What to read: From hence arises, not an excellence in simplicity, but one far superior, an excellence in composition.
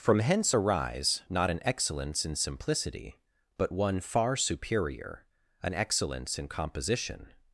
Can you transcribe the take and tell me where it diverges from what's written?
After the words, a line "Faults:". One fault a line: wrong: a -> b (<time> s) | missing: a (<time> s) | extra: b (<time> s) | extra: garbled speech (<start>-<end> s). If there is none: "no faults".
From hence arise, not an excellence in simplicity, but one far superior, an excellence in composition.
Faults:
wrong: arises -> arise (0.5 s)